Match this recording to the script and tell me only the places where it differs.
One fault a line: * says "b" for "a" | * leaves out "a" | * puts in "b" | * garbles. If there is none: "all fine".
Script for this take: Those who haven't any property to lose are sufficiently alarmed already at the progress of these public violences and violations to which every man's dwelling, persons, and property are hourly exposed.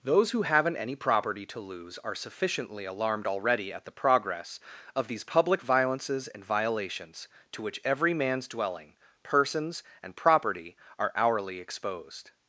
all fine